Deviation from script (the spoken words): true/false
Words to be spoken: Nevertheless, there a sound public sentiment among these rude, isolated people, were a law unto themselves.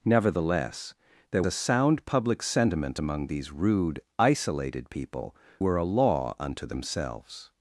false